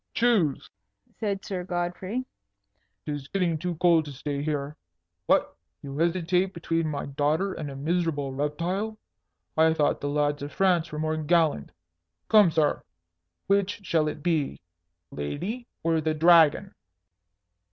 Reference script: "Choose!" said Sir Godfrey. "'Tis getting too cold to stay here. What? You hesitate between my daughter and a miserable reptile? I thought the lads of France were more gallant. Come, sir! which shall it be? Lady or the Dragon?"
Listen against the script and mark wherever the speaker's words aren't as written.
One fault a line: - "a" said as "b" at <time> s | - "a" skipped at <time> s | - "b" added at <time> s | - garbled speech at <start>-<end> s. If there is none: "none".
none